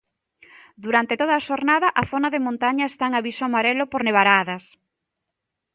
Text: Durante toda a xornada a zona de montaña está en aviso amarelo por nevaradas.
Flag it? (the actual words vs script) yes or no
no